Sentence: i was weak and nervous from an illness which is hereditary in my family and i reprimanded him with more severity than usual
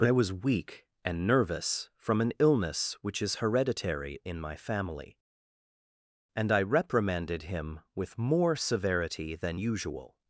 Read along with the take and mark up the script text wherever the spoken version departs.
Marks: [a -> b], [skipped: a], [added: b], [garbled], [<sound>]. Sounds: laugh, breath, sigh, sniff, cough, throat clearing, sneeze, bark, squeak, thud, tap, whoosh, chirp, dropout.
[added: but] i was weak and nervous from an illness which is hereditary in my family and i reprimanded him with more severity than usual